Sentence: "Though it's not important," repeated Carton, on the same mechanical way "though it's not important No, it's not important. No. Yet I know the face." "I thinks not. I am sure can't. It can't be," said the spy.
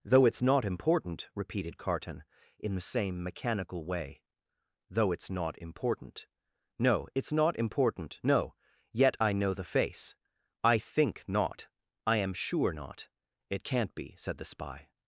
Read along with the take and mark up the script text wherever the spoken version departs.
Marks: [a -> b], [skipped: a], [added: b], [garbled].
"Though it's not important," repeated Carton, [on -> in] the same mechanical way "though it's not important No, it's not important. No. Yet I know the face." "I [thinks -> think] not. I am sure [can't. -> not] It can't be," said the spy.